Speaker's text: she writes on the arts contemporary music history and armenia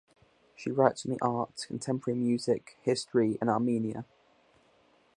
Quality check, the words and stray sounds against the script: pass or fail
pass